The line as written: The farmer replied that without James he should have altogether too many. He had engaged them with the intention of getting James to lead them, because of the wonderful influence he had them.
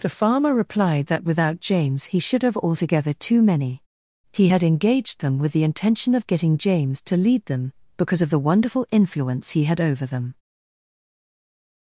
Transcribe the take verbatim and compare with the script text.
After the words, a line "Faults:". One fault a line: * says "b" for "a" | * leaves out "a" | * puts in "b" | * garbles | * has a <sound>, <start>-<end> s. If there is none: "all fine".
The farmer replied that without James he should have altogether too many. He had engaged them with the intention of getting James to lead them, because of the wonderful influence he had over them.
Faults:
* puts in "over"